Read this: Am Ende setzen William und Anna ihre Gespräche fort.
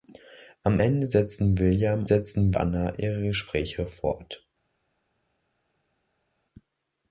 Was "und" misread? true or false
true